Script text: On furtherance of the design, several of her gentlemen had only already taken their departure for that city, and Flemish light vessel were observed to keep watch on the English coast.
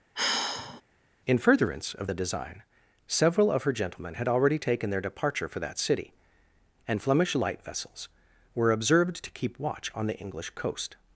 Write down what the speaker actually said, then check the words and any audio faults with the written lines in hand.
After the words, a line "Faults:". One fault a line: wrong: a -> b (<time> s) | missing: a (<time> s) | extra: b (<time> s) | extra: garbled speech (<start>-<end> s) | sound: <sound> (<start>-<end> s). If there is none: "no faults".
In furtherance of the design, several of her gentlemen had already taken their departure for that city, and Flemish light vessels were observed to keep watch on the English coast.
Faults:
sound: sigh (0.2-0.8 s)
wrong: On -> In (1.3 s)
missing: only (4.3 s)
wrong: vessel -> vessels (7.6 s)